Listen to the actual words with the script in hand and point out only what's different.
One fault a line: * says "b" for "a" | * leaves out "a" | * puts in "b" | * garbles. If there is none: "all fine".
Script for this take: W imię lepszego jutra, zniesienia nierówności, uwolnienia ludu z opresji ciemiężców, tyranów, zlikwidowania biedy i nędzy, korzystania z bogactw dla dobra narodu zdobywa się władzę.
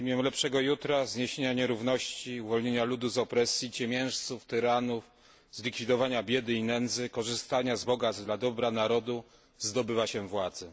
all fine